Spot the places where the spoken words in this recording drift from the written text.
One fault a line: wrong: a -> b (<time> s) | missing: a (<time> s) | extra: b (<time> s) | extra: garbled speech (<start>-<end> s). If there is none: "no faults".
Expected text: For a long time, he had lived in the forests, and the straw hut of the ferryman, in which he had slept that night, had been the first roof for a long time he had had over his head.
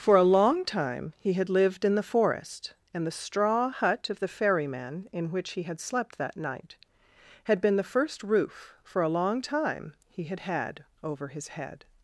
wrong: forests -> forest (2.0 s)